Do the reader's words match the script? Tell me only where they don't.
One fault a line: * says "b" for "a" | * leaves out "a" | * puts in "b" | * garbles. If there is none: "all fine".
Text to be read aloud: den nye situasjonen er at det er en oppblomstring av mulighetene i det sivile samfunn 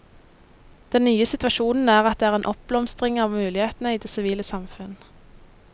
all fine